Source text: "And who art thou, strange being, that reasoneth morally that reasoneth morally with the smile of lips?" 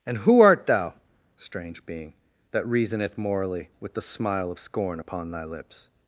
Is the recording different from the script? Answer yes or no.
yes